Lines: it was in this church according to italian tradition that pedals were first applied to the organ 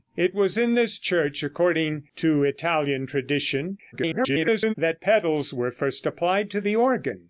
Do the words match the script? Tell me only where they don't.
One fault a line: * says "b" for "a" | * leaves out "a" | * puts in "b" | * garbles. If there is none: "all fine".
* garbles